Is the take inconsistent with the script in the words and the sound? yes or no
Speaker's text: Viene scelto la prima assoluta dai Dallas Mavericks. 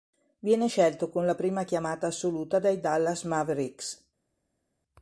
yes